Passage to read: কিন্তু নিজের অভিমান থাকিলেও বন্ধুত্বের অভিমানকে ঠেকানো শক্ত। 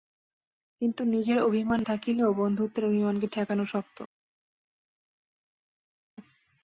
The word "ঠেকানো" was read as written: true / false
true